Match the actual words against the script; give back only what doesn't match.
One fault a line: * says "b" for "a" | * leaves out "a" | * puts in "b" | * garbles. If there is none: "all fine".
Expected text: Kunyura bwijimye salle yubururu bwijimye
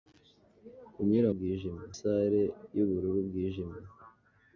all fine